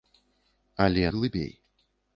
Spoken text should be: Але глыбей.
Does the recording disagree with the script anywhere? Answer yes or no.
no